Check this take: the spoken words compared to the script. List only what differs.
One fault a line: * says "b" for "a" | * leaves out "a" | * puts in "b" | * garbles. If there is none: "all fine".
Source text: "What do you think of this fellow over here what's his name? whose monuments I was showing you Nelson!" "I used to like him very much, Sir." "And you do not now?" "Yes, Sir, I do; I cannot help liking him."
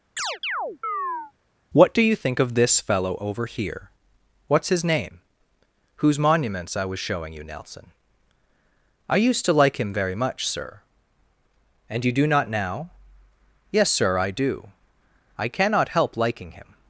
all fine